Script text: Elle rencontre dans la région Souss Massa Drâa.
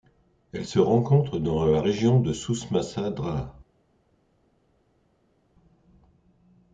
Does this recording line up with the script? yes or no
no